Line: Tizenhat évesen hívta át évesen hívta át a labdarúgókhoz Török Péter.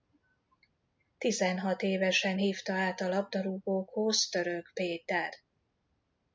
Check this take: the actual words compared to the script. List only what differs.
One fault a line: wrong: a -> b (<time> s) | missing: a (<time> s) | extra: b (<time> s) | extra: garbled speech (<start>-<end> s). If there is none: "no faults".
missing: évesen hívta át (3.0 s)